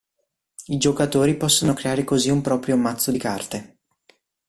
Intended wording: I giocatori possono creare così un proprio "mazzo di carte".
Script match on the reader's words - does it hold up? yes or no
yes